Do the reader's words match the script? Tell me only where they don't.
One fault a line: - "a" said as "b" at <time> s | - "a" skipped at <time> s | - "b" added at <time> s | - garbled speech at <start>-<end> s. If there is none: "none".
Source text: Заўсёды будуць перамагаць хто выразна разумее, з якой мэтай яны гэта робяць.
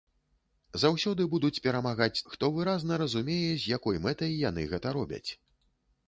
none